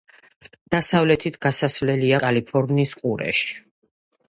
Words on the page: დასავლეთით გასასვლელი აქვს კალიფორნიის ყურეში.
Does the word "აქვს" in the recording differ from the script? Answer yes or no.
yes